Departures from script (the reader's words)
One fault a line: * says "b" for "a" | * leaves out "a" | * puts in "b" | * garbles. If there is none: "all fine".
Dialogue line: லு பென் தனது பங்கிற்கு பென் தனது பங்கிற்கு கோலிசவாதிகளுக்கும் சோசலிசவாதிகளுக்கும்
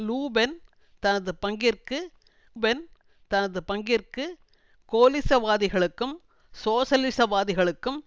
all fine